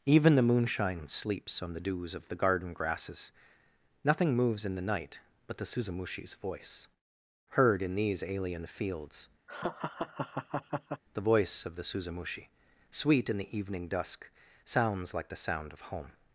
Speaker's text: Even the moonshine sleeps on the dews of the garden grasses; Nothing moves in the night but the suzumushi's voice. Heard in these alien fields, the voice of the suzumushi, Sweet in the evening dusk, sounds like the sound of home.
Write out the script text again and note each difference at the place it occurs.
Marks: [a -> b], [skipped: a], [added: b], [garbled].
Even the moonshine sleeps on the dews of the garden grasses; Nothing moves in the night but the suzumushi's voice. Heard in these alien fields, the voice of the suzumushi, Sweet in the evening dusk, sounds like the sound of home.